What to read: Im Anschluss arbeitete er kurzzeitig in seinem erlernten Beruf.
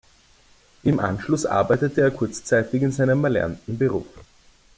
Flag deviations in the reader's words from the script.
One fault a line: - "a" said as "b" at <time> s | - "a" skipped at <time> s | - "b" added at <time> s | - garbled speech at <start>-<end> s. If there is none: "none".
none